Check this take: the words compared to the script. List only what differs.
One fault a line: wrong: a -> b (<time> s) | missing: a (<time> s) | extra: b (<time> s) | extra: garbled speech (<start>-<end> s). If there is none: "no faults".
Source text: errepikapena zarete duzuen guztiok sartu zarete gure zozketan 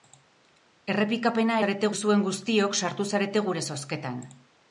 no faults